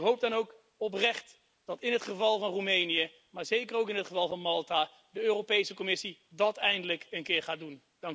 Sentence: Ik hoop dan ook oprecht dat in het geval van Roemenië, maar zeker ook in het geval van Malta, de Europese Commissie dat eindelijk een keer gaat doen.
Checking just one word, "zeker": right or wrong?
right